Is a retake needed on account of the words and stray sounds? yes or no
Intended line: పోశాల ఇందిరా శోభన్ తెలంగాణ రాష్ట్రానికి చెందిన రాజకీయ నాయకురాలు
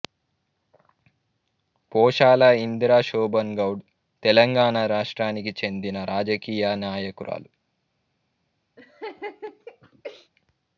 yes